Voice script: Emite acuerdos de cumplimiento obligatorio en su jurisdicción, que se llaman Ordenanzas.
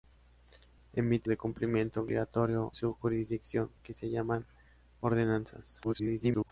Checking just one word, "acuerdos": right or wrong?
wrong